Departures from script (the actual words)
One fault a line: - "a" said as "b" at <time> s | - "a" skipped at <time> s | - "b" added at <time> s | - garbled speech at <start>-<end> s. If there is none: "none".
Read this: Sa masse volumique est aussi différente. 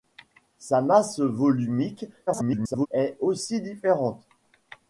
- garbled speech at 2.3-2.9 s